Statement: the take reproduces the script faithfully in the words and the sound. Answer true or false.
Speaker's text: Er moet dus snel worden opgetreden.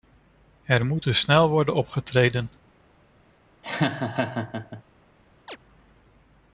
false